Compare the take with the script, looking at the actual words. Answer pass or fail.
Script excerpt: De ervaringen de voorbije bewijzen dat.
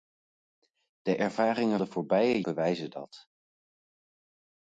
pass